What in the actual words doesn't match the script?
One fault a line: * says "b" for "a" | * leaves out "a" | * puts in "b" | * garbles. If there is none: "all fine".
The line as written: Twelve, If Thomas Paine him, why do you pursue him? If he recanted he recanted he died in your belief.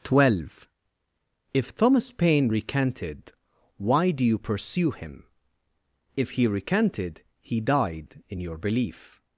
* says "recanted" for "him"
* leaves out "recanted he"